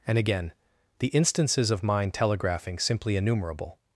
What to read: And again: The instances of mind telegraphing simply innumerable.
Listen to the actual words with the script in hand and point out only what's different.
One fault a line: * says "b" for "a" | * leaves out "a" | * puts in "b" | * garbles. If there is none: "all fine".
all fine